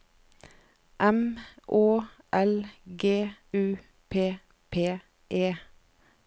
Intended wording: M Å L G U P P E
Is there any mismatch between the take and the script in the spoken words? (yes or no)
no